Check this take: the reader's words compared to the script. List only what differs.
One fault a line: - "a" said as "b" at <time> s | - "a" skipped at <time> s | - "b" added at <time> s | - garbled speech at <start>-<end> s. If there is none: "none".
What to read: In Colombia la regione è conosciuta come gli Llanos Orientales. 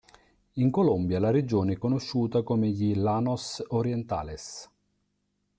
none